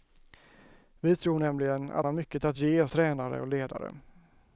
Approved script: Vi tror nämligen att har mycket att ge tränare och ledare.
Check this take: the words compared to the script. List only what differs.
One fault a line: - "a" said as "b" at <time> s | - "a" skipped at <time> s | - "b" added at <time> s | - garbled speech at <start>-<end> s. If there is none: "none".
none